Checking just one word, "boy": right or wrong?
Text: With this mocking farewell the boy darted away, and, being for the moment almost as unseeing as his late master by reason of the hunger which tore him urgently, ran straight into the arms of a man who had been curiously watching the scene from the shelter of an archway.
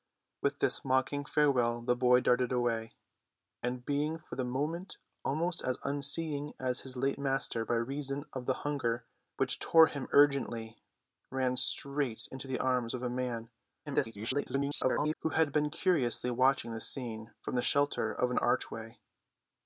right